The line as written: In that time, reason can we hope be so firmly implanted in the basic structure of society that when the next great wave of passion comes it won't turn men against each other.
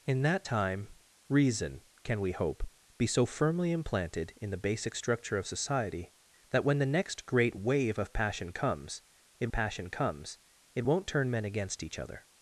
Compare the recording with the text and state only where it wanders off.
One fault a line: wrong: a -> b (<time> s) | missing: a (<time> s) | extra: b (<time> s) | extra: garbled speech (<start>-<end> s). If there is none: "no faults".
extra: passion comes it (9.5 s)